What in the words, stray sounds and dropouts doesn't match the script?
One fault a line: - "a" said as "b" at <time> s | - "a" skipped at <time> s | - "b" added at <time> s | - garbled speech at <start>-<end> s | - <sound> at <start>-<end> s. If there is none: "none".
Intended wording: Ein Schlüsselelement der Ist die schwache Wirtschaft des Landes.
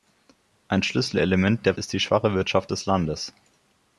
none